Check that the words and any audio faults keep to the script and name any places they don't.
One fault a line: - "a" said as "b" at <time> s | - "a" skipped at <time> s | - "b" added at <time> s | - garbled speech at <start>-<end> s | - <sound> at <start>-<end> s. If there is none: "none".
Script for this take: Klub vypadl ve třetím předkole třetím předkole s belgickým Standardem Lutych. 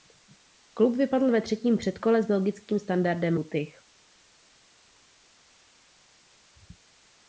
- "třetím předkole" skipped at 2.2 s